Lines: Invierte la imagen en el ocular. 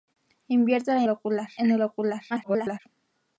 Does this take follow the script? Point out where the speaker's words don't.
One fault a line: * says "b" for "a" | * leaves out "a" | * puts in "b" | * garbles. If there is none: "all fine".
* says "ocular" for "imagen"
* garbles